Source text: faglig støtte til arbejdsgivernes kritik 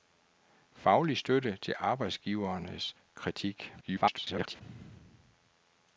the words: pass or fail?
fail